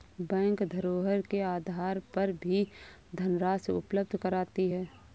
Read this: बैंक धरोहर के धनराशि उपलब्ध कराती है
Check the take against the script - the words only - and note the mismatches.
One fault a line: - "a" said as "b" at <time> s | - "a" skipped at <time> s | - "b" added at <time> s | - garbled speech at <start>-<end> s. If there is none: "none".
- "आधार पर भी" added at 1.4 s